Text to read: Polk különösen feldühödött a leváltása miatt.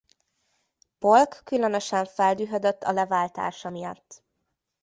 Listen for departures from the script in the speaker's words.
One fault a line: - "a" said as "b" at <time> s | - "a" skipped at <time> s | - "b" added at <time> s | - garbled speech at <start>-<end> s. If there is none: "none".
none